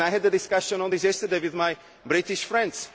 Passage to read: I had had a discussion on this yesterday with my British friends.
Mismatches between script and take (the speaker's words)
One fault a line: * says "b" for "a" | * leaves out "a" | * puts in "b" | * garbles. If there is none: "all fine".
* leaves out "had"